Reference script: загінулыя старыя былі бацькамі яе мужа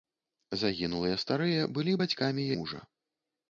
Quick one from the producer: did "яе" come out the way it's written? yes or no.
no